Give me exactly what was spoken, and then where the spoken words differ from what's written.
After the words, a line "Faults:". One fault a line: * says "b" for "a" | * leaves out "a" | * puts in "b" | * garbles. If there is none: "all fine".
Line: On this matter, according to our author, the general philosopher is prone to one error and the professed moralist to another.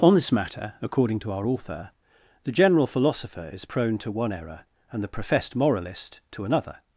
On this matter, according to our author, the general philosopher is prone to one error and the professed moralist to another.
Faults:
all fine